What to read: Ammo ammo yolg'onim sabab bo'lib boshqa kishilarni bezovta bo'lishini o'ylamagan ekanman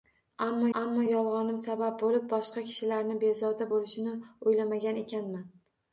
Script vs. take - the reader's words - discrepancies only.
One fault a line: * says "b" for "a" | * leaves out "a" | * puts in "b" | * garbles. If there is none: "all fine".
all fine